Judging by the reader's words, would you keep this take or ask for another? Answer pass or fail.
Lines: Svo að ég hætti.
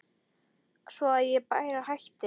fail